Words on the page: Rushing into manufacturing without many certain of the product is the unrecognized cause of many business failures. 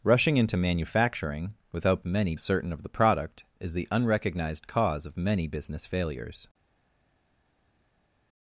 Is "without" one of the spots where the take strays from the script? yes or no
no